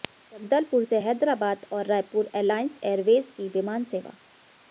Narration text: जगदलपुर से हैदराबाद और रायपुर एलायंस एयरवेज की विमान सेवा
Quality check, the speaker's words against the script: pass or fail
pass